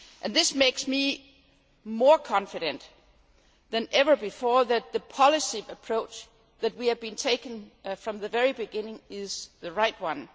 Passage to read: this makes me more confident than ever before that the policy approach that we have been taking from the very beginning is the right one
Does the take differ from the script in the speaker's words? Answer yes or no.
no